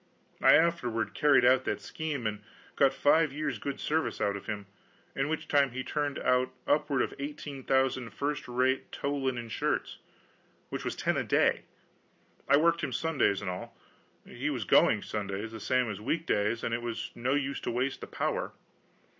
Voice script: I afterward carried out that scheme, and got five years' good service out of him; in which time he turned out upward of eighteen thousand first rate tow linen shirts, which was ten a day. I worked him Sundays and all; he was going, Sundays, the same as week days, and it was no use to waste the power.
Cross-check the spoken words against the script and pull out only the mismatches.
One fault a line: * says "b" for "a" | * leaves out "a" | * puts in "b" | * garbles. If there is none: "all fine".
all fine